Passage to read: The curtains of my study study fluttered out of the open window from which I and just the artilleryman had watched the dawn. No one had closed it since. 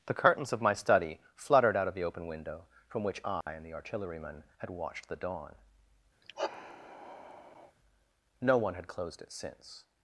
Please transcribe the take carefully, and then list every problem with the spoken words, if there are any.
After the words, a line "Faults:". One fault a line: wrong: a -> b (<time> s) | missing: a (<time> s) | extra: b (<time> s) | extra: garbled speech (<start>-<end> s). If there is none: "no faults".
The curtains of my study fluttered out of the open window from which I and the artilleryman had watched the dawn. No one had closed it since.
Faults:
missing: study (1.2 s)
missing: just (3.6 s)